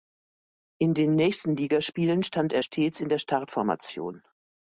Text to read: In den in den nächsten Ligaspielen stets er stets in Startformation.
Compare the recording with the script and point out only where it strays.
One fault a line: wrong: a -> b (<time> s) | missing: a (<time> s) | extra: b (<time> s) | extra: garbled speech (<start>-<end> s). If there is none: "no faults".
missing: in den (1.1 s)
wrong: stets -> stand (2.2 s)
extra: der (3.1 s)